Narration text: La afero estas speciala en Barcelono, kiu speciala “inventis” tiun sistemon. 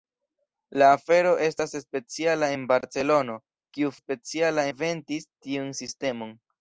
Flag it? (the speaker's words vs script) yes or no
no